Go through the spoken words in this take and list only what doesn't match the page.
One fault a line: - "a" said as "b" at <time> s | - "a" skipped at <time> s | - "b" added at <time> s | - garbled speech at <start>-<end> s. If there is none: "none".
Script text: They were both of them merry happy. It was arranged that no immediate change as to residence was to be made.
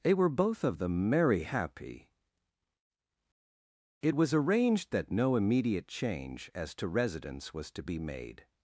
none